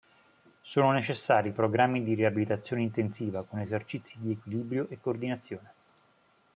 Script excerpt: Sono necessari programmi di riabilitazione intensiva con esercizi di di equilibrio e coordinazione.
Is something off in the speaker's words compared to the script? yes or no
yes